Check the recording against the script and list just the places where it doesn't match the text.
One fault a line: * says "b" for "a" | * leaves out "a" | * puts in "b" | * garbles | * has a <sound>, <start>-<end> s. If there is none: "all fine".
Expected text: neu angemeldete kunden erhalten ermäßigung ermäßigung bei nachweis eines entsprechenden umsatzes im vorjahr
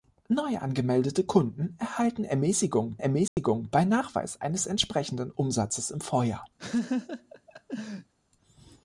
* has a dropout, 3.3-3.4 s
* has a laugh, 6.6-8.1 s